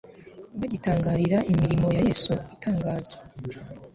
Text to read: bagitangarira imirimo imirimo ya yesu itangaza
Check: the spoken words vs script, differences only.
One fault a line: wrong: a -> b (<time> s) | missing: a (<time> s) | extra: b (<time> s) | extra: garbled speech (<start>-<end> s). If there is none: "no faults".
missing: imirimo (1.9 s)